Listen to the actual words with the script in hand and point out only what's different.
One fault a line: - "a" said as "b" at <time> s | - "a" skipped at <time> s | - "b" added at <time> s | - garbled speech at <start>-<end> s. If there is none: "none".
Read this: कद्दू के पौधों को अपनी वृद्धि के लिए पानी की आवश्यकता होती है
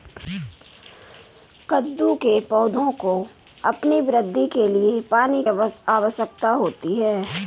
- "की" skipped at 5.4 s